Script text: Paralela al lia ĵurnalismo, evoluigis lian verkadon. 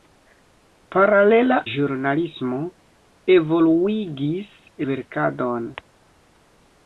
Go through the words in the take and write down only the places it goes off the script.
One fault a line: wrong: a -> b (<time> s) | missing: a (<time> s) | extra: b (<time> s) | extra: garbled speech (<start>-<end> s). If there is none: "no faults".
missing: al lia (1.6 s)
missing: lian (4.5 s)